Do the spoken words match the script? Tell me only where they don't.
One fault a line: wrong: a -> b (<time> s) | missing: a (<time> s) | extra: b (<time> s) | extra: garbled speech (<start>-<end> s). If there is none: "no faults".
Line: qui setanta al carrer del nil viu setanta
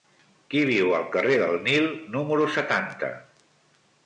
wrong: setanta -> viu (0.7 s)
wrong: viu -> número (2.2 s)